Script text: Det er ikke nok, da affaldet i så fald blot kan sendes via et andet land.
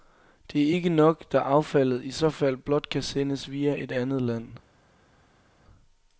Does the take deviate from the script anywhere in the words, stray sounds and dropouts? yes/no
no